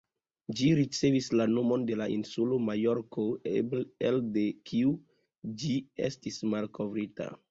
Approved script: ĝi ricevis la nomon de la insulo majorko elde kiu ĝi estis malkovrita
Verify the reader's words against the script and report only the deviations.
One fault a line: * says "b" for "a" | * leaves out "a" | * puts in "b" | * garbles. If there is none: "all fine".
all fine